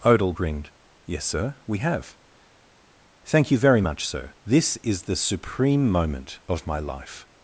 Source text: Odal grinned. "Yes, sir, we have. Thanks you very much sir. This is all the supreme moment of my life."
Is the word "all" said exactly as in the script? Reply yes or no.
no